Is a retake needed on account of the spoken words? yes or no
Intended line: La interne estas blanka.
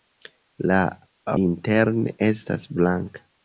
no